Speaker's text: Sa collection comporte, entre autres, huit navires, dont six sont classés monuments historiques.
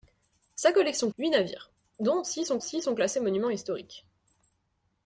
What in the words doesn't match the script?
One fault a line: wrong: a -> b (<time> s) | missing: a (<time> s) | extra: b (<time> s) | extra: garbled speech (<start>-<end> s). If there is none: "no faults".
missing: comporte entre autres (1.1 s)
extra: six sont (2.6 s)